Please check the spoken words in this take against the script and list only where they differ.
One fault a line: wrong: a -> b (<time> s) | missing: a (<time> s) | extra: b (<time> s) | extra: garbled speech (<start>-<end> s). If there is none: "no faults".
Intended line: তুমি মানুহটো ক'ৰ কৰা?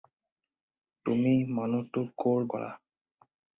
no faults